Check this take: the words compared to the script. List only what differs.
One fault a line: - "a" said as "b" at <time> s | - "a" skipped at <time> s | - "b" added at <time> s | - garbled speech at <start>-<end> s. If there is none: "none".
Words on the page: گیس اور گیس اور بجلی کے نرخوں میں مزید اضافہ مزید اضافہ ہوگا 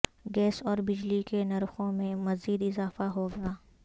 - "گیس اور" skipped at 0.8 s
- "مزید اضافہ" skipped at 3.1 s